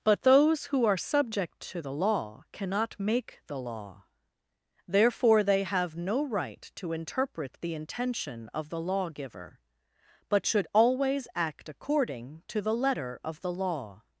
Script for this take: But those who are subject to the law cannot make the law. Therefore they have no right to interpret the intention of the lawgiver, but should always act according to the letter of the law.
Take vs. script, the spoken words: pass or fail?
pass